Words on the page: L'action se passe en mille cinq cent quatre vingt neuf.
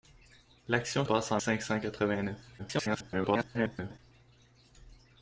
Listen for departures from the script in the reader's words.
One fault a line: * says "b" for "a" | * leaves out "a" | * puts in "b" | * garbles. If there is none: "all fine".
* leaves out "se"
* leaves out "mille"
* garbles